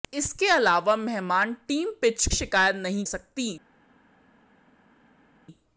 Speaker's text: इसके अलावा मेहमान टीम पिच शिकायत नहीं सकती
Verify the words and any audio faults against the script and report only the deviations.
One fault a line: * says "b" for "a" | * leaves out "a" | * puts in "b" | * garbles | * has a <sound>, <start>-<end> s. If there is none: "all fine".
all fine